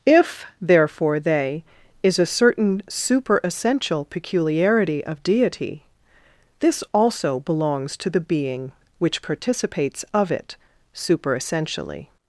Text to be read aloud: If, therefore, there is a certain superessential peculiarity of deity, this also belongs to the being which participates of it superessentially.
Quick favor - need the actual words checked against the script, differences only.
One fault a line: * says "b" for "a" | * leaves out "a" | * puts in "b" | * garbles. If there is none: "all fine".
* says "they" for "there"